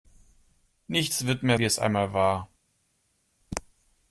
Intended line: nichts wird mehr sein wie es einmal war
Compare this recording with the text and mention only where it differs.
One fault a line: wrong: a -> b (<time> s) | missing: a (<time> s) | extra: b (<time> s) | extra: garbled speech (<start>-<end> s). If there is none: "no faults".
missing: sein (1.6 s)